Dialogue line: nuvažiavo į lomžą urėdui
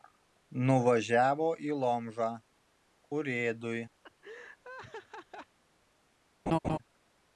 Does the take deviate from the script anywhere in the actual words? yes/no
no